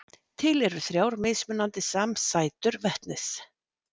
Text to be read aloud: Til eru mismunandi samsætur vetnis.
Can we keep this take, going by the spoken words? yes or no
no